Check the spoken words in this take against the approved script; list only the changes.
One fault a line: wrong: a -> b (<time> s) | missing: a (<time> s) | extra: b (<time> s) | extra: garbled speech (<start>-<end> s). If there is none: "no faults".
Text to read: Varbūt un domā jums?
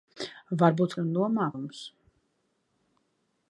no faults